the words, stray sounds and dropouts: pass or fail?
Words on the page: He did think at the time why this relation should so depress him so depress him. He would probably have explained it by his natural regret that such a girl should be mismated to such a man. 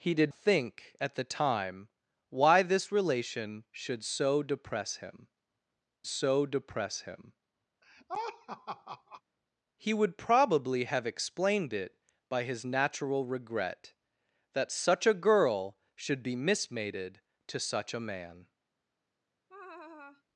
fail